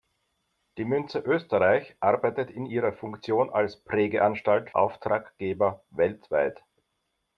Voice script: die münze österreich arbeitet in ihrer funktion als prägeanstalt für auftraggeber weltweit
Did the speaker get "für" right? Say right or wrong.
wrong